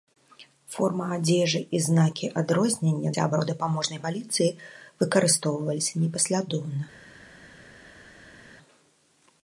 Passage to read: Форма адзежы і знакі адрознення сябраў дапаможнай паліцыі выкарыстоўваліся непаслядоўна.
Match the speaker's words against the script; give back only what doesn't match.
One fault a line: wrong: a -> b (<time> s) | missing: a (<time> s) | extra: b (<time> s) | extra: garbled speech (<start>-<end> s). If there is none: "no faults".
no faults